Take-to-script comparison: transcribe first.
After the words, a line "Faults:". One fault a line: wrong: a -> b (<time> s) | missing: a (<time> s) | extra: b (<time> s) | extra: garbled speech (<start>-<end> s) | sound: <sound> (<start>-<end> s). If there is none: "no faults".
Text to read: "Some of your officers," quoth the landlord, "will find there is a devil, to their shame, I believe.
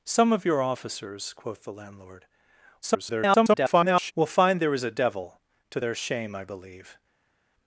"Some of your officers," quoth the landlord, [garbled] "will find there is a devil, to their shame, I believe.
Faults:
extra: garbled speech (2.8-4.1 s)